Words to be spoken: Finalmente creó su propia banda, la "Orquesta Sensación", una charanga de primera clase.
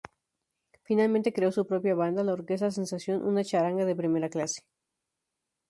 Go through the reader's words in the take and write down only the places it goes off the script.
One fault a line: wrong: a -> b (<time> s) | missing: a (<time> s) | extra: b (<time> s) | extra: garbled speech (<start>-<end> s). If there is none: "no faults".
no faults